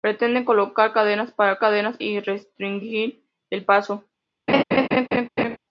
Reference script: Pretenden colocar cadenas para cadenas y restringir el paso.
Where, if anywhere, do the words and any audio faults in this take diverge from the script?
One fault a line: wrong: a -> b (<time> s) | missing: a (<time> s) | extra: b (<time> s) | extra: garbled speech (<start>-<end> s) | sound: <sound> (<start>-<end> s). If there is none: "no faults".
sound: laugh (4.5-5.6 s)